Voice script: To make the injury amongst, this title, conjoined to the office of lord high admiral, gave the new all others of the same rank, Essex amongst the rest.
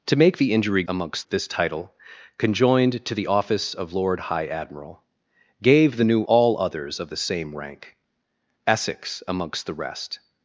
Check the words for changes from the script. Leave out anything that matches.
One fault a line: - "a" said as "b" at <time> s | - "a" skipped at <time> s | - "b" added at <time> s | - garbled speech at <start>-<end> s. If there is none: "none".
none